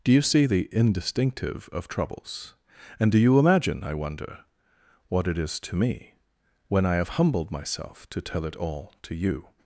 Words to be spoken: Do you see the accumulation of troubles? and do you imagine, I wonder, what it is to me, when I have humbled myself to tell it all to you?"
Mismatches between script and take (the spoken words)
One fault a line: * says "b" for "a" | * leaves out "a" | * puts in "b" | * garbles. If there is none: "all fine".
* says "indistinctive" for "accumulation"